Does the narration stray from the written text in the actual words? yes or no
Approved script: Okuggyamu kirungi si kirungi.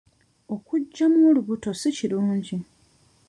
yes